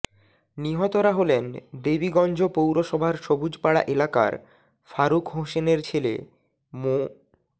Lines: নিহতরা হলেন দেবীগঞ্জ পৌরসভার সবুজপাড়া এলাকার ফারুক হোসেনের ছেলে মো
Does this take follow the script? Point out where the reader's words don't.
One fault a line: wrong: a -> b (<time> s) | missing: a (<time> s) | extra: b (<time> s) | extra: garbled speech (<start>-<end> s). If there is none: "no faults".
no faults